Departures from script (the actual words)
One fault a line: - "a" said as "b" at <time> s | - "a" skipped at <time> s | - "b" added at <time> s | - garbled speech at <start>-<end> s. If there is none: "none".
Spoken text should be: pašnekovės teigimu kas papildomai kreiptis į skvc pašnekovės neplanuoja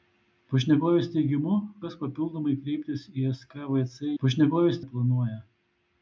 none